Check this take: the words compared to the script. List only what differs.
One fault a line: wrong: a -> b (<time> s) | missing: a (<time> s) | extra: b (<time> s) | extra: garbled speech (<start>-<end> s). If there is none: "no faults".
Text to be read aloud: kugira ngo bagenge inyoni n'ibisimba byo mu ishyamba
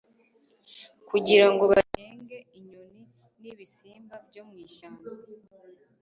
no faults